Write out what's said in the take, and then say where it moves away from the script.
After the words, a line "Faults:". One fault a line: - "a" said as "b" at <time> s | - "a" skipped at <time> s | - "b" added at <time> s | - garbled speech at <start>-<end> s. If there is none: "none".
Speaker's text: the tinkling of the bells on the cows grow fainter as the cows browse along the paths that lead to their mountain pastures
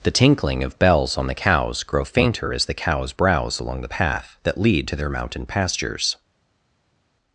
the tinkling of bells on the cows grow fainter as the cows browse along the path that lead to their mountain pastures
Faults:
- "the" skipped at 0.8 s
- "paths" said as "path" at 3.9 s